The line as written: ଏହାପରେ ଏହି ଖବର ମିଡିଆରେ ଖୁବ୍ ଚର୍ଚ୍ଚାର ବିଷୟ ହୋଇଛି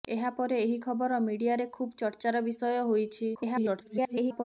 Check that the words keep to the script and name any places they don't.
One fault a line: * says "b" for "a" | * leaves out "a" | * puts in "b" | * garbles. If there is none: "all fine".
* garbles